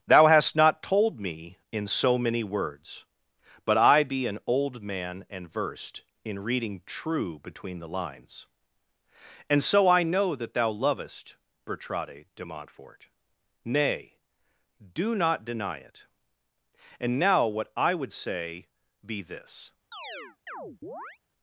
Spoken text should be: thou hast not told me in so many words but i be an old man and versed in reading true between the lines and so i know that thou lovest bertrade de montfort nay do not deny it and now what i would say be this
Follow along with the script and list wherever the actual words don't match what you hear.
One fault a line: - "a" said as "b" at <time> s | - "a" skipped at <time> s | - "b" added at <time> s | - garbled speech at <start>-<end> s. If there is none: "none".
none